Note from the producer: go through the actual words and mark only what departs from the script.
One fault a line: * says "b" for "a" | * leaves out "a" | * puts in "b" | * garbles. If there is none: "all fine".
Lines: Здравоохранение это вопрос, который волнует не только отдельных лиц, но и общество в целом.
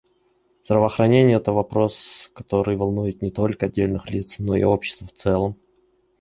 all fine